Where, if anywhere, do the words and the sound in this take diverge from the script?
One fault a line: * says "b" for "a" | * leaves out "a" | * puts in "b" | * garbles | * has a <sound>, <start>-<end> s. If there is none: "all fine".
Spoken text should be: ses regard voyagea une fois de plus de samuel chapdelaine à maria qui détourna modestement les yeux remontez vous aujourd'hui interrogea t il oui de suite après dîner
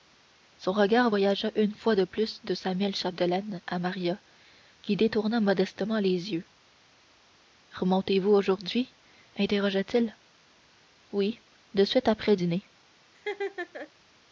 * says "son" for "ses"
* has a laugh, 13.1-13.9 s